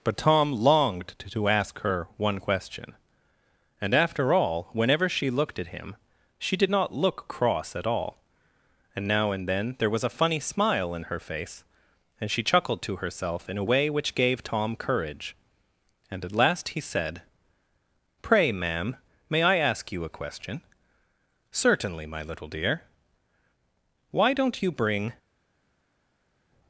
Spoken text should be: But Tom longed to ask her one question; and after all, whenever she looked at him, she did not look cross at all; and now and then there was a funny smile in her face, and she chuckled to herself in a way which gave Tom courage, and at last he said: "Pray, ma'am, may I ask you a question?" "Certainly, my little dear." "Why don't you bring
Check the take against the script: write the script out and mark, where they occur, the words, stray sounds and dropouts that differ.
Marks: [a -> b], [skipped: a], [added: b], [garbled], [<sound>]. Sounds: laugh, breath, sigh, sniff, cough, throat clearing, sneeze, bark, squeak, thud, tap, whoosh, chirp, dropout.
But Tom longed to ask her one question; and after all, whenever she looked at him, she did not look cross at all; and now and then there was a funny smile in her face, and she chuckled to herself in a way which gave Tom courage, and at last he said: "Pray, ma'am, may I ask you a question?" "Certainly, my little dear." "Why don't you bring